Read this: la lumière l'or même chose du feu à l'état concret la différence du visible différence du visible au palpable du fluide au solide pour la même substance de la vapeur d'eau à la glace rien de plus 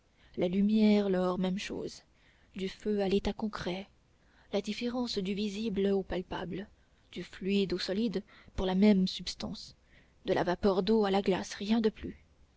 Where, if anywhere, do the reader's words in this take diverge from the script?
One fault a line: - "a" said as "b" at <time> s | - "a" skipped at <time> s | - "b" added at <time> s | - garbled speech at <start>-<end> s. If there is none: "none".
- "différence du visible" skipped at 5.8 s